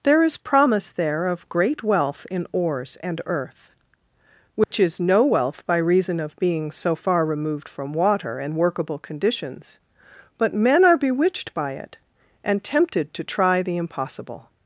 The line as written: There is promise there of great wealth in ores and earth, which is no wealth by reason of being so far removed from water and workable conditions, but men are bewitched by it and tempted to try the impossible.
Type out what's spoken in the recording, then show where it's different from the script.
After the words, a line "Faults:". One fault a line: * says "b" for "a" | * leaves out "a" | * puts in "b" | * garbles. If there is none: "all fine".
There is promise there of great wealth in ores and earth, which is no wealth by reason of being so far removed from water and workable conditions, but men are bewitched by it and tempted to try the impossible.
Faults:
all fine